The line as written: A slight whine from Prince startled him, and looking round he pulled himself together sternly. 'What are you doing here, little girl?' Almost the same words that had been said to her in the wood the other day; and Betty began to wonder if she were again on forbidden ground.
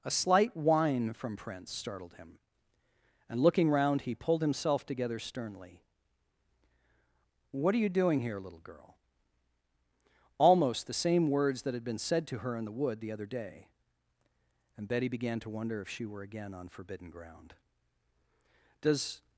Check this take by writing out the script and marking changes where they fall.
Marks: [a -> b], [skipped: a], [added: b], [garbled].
A slight whine from Prince startled him, and looking round he pulled himself together sternly. 'What are you doing here, little girl?' Almost the same words that had been said to her in the wood the other day; and Betty began to wonder if she were again on forbidden ground. [added: Does]